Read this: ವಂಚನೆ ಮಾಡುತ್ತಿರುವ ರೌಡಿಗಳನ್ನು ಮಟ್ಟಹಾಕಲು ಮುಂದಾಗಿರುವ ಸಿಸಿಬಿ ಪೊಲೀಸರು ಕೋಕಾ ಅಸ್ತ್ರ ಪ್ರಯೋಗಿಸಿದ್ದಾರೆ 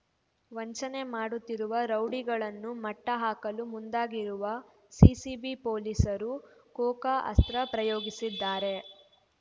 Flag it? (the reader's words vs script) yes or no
no